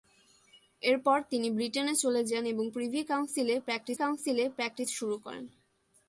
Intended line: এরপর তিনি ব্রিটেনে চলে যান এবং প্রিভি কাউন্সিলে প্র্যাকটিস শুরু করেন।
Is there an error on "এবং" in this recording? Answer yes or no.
no